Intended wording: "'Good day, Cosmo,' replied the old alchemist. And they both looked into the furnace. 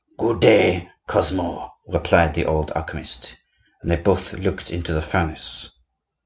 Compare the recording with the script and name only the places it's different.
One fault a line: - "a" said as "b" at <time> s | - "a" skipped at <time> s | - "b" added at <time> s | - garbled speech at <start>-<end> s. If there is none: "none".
none